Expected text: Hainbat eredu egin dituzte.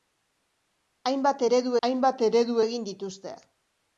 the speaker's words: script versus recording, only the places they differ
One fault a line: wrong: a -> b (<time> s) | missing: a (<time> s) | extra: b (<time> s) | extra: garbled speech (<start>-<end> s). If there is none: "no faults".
extra: hainbat eredu (1.9 s)